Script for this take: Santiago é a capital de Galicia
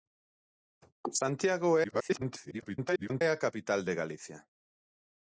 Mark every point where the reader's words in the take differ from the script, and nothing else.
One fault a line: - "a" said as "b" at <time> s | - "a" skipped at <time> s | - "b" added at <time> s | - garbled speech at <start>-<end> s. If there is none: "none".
- garbled speech at 1.8-3.2 s